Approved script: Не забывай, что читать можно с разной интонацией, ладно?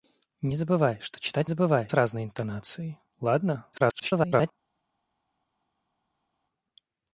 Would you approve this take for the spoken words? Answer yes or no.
no